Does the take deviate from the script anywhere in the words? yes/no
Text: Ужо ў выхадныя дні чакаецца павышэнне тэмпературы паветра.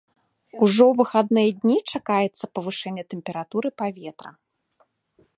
no